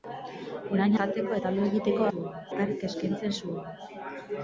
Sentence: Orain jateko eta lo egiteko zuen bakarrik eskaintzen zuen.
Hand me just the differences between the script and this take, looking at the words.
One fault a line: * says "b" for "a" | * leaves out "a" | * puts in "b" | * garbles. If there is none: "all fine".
all fine